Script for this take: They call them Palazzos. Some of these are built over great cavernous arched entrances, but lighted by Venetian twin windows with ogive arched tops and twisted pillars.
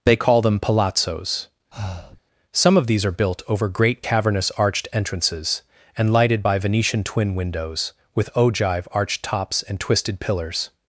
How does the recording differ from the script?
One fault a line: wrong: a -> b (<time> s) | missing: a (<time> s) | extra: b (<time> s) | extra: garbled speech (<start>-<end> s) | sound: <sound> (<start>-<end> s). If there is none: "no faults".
sound: breath (1.7-2.2 s)
wrong: but -> and (6.0 s)